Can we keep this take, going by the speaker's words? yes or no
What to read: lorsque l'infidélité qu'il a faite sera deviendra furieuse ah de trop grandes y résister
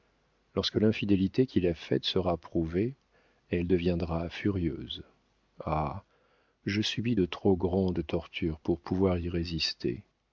no